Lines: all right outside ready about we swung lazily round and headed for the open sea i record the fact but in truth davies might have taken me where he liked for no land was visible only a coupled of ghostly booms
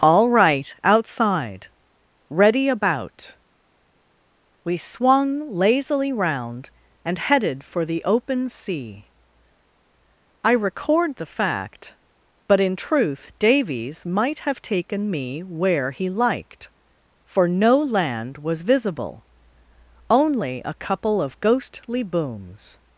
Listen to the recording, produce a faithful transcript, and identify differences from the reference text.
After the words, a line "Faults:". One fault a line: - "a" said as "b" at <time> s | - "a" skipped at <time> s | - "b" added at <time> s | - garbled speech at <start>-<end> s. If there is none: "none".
all right outside ready about we swung lazily round and headed for the open sea i record the fact but in truth davies might have taken me where he liked for no land was visible only a couple of ghostly booms
Faults:
- "coupled" said as "couple" at 20.7 s